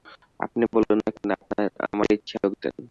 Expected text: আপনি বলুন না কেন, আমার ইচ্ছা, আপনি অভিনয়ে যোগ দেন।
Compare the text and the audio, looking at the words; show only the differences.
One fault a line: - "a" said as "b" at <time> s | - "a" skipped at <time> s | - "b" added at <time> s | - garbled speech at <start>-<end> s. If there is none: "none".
- "আপনি অভিনয়ে" skipped at 2.4 s